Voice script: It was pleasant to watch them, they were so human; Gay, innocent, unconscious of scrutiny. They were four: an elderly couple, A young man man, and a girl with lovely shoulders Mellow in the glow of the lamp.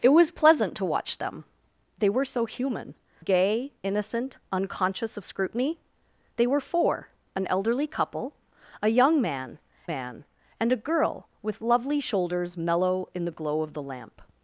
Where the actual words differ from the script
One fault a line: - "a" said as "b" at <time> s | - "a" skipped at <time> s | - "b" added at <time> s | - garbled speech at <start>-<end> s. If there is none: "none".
none